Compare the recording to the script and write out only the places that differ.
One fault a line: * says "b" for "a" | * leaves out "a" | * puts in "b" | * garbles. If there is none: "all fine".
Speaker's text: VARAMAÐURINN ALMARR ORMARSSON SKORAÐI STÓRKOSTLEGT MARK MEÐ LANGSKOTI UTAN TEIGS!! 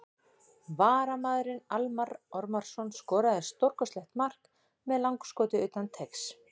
all fine